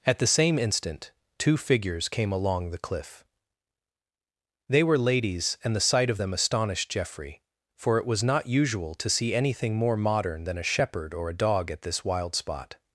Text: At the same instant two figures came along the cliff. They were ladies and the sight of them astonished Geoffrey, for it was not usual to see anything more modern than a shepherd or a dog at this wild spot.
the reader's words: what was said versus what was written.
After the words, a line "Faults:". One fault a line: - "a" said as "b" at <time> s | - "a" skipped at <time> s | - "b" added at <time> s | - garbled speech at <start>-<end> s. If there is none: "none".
At the same instant two figures came along the cliff. They were ladies and the sight of them astonished Geoffrey, for it was not usual to see anything more modern than a shepherd or a dog at this wild spot.
Faults:
none